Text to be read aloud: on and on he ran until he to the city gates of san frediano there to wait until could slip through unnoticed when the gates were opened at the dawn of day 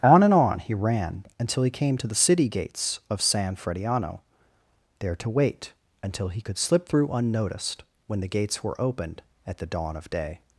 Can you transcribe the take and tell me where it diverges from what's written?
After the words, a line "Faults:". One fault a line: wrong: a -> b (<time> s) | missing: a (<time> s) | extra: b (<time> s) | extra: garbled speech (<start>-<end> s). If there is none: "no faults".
on and on he ran until he came to the city gates of san frediano there to wait until he could slip through unnoticed when the gates were opened at the dawn of day
Faults:
extra: came (1.7 s)
extra: he (6.3 s)